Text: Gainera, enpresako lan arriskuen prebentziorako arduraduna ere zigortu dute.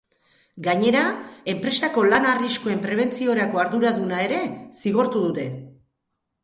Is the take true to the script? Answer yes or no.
yes